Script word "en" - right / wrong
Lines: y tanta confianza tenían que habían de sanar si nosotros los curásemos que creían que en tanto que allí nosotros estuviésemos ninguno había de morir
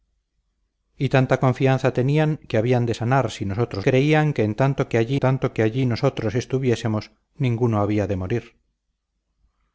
wrong